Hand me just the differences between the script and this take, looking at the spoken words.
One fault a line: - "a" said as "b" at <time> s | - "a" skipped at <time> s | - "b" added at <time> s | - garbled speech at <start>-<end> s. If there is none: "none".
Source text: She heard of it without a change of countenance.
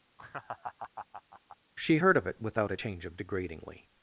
- "countenance" said as "degradingly" at 3.2 s